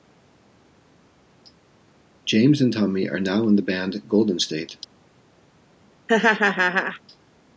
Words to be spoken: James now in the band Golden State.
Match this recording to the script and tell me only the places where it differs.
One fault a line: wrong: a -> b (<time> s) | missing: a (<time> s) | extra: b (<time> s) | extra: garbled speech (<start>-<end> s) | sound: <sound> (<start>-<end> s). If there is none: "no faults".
extra: and Tommy are (2.6 s)
sound: laugh (6.1-7.0 s)